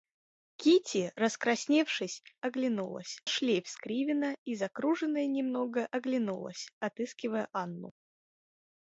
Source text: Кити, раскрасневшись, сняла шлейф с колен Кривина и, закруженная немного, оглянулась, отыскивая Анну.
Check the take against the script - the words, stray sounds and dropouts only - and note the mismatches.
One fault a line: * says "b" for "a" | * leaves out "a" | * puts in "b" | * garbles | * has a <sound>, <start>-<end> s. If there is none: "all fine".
* says "оглянулась" for "сняла"
* leaves out "колен"